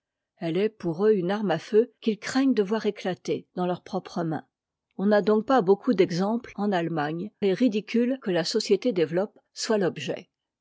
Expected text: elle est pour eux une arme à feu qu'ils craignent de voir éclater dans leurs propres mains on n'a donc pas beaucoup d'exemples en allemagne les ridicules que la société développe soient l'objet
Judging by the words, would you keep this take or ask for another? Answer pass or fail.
pass